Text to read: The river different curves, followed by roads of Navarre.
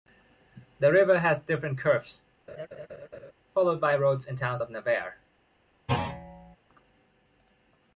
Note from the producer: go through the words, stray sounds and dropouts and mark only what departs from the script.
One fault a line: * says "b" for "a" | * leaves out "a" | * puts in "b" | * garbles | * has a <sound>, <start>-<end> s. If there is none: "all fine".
* puts in "has"
* has a laugh, 2.5-3.3 s
* puts in "and towns"
* has a thud, 5.9-6.6 s